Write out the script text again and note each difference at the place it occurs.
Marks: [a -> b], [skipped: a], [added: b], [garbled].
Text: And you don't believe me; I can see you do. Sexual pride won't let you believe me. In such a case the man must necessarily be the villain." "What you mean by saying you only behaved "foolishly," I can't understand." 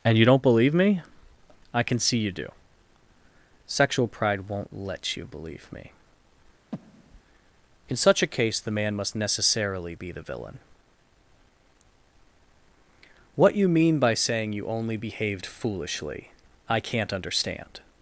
And you don't believe me; I can see you do. Sexual pride won't let you believe me. In such a case the man must necessarily be the villain." "What you mean by saying you only behaved "foolishly," I can't understand."